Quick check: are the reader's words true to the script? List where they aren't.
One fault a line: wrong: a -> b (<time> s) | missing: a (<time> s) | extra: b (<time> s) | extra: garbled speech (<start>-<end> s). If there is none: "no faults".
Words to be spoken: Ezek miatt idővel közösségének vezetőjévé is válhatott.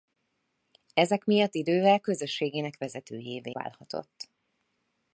missing: is (3.5 s)